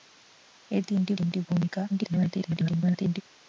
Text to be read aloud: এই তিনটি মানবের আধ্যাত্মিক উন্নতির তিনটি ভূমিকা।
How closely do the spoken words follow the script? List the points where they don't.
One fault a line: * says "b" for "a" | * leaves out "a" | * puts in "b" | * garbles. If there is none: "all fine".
* leaves out "মানবের আধ্যাত্মিক উন্নতির"
* garbles